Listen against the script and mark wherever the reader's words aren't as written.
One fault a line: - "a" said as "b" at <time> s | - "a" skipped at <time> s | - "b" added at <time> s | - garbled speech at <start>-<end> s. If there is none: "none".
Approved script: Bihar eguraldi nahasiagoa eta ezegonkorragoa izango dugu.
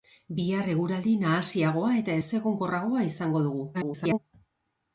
- garbled speech at 3.7-4.2 s